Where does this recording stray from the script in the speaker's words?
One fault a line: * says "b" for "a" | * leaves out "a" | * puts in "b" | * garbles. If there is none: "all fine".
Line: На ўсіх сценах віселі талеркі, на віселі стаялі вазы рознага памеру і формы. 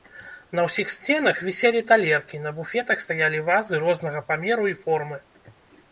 * says "буфетах" for "віселі"